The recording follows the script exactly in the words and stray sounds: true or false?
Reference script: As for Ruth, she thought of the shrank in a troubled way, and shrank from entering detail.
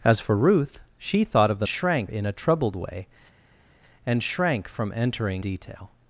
true